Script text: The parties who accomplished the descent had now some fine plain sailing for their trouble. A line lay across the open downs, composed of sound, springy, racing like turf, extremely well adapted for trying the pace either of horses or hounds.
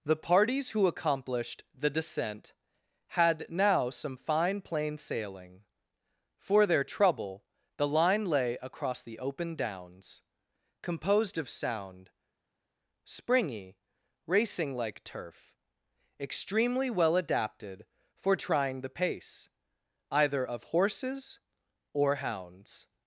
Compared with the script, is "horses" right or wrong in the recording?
right